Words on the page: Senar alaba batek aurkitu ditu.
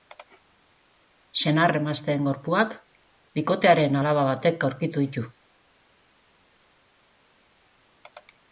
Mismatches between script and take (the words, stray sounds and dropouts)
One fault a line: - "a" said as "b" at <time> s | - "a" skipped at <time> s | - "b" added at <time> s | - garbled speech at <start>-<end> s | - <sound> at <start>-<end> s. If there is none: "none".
- "emazteen gorpuak bikotearen" added at 1.8 s